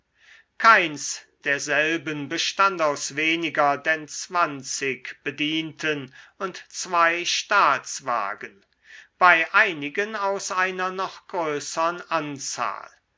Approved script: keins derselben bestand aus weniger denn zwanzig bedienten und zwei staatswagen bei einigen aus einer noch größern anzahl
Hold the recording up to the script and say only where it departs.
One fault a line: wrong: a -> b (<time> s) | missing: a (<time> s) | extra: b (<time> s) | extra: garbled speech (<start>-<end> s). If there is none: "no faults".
no faults